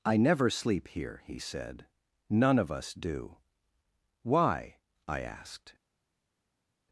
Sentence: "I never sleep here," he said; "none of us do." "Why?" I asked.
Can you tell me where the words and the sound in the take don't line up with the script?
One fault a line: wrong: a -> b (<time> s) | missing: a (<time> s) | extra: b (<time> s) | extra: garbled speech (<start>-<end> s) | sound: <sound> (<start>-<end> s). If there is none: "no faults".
no faults